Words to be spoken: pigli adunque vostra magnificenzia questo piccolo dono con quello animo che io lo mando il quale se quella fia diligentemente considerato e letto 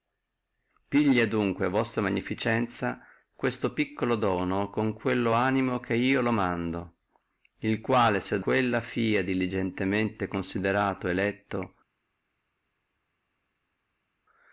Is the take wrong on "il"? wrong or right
right